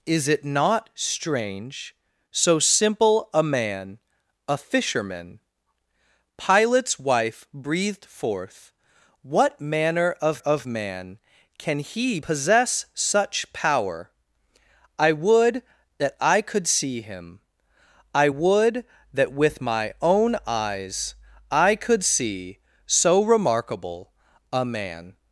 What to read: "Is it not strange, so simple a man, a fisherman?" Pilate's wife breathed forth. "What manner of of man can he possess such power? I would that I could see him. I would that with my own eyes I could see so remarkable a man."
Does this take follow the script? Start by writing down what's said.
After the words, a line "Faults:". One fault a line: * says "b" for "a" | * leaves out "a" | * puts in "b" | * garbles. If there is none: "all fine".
"Is it not strange, so simple a man, a fisherman?" Pilate's wife breathed forth. "What manner of of man can he possess such power? I would that I could see him. I would that with my own eyes I could see so remarkable a man."
Faults:
all fine